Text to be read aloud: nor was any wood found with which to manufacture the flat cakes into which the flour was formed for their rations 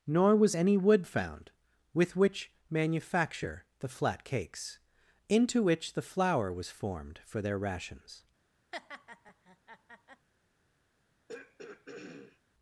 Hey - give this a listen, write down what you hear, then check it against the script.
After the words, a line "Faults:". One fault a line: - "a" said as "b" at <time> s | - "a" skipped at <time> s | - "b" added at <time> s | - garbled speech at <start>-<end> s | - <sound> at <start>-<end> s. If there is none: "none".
nor was any wood found with which manufacture the flat cakes into which the flour was formed for their rations
Faults:
- "to" skipped at 2.5 s
- laugh at 8.7-10.3 s
- throat clearing at 11.3-12.4 s